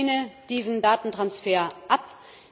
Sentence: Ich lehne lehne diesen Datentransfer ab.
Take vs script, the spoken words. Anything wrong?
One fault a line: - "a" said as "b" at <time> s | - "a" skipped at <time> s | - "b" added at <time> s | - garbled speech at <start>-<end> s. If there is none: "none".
- "lehne" skipped at 0.3 s